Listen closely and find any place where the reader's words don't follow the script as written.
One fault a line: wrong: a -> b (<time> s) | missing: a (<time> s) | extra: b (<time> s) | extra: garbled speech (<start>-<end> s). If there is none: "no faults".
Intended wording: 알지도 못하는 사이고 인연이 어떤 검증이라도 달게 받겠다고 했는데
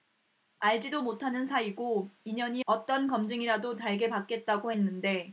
no faults